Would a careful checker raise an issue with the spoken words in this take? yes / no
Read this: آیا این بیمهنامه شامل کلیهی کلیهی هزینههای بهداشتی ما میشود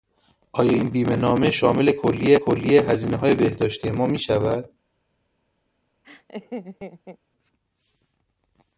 no